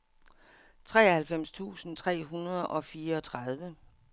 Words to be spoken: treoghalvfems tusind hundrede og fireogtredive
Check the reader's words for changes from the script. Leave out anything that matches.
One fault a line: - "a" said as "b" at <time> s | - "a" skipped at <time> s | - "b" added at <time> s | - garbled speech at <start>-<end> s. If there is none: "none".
- "tre" added at 2.0 s